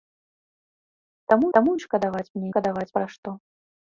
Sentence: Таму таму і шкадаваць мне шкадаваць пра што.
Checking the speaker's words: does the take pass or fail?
pass